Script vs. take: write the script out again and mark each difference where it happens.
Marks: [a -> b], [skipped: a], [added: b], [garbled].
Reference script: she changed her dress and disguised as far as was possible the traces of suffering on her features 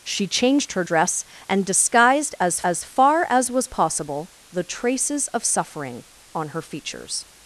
she changed her dress and disguised as [added: as] far as was possible the traces of suffering on her features